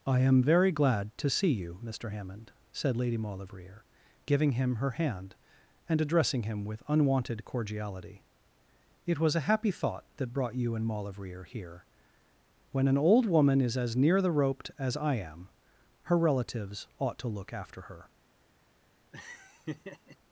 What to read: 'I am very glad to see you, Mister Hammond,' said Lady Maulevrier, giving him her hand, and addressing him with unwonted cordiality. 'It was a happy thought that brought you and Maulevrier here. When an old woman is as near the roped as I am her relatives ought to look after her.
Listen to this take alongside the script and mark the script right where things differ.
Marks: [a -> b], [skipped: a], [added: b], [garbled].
'I am very glad to see you, Mister Hammond,' said Lady Maulevrier, giving him her hand, and addressing him with unwonted cordiality. 'It was a happy thought that brought you and Maulevrier here. When an old woman is as near the roped as I am her relatives ought to look after her.